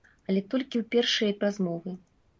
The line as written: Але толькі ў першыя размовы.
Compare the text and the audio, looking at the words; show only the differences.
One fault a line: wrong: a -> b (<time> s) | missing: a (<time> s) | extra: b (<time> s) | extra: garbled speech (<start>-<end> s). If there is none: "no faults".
no faults